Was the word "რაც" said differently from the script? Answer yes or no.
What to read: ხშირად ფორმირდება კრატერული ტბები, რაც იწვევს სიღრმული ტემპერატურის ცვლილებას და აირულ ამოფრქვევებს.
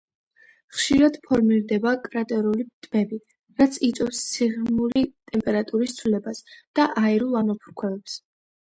no